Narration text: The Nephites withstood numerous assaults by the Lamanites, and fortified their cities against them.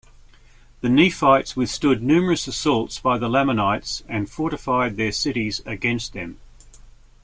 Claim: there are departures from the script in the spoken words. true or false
false